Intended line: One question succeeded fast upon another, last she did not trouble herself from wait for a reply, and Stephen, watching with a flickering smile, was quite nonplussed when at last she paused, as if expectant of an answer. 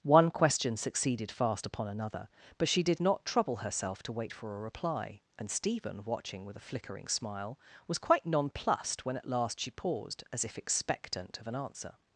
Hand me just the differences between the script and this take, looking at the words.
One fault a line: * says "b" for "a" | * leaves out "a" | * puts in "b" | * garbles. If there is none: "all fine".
* says "but" for "last"
* says "to" for "from"